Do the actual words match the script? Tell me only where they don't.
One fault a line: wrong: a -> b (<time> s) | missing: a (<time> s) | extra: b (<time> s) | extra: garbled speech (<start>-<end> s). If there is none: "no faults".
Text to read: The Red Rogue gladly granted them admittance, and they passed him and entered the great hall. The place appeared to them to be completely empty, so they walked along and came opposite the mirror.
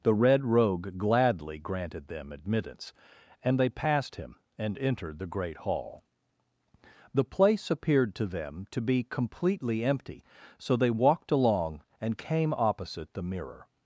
no faults